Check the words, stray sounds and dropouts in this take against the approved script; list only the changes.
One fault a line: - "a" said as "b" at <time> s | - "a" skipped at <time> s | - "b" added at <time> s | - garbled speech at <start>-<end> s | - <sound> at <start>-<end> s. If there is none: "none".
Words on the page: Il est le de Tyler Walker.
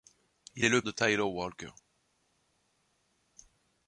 none